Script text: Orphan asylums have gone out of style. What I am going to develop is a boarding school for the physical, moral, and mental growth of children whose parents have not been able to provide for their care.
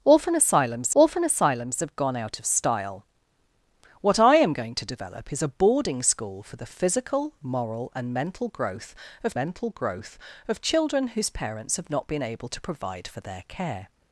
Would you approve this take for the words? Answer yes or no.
no